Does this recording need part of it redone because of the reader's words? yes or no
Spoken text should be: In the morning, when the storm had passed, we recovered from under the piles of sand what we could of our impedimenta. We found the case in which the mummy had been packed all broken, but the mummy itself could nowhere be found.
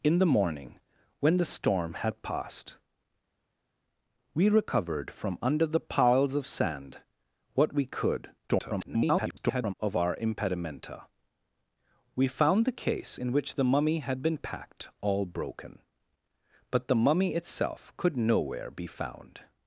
yes